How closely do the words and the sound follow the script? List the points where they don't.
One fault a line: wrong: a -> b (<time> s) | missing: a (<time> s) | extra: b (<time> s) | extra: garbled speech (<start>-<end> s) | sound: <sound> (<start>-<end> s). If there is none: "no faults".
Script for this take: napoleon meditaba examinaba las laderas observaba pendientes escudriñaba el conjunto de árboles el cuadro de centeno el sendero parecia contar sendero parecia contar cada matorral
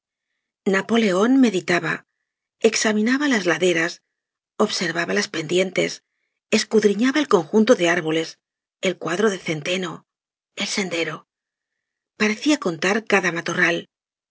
extra: las (5.1 s)
missing: sendero parecia contar (13.1 s)